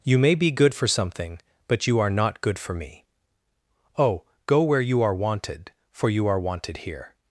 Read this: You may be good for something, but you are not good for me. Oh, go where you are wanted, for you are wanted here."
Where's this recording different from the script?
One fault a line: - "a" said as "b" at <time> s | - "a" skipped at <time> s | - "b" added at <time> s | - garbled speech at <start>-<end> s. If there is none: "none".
none